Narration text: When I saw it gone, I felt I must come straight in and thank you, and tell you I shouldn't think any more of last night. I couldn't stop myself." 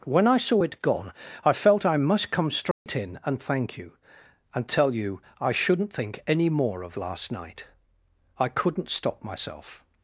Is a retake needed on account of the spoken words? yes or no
no